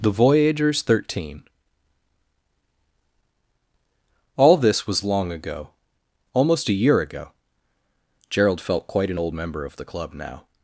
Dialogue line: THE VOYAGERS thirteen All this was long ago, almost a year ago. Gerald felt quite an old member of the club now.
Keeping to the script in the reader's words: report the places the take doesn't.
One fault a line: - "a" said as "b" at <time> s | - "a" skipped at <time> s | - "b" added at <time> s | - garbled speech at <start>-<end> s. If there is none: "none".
none